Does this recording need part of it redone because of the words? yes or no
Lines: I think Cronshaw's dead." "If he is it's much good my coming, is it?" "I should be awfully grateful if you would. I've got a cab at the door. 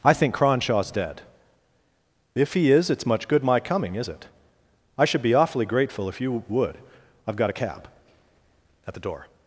no